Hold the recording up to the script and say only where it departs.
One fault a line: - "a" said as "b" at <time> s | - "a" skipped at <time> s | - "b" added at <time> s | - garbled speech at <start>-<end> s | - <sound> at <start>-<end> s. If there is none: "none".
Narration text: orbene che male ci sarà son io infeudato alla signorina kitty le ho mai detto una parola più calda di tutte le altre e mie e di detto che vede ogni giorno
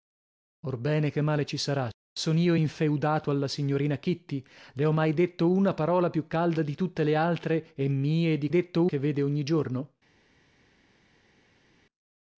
none